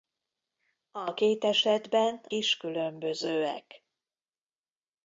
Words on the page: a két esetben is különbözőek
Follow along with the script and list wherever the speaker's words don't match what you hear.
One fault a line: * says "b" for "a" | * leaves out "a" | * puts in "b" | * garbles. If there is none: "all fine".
all fine